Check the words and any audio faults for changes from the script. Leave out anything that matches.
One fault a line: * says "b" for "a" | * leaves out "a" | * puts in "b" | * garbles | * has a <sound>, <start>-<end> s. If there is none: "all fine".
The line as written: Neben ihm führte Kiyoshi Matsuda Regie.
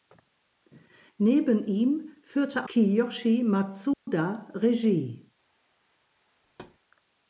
* has a dropout, 3.9-4.1 s
* has a thud, 6.4-6.8 s